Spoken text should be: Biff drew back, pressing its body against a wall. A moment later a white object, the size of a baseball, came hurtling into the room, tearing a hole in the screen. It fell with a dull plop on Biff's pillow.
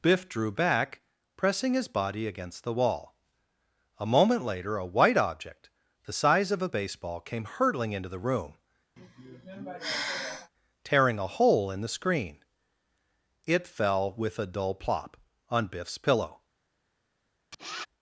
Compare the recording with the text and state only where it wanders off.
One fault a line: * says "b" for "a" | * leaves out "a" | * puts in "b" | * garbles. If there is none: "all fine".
* says "his" for "its"
* says "the" for "a"